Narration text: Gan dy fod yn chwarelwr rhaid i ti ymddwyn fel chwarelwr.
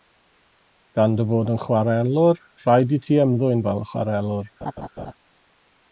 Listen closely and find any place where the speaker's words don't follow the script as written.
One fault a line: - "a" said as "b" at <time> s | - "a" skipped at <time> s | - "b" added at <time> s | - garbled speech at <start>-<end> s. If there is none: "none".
none